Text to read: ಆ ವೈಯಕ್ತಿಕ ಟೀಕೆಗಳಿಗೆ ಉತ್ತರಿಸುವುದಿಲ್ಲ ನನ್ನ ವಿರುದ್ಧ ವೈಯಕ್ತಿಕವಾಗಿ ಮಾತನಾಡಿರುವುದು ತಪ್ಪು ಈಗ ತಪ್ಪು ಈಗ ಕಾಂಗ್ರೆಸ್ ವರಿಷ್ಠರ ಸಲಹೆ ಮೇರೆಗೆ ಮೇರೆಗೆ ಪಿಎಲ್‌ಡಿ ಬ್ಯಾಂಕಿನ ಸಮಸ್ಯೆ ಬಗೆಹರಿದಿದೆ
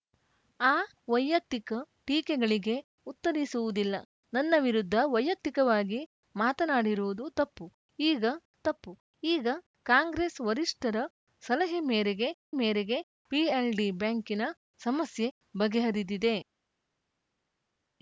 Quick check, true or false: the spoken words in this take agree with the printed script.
true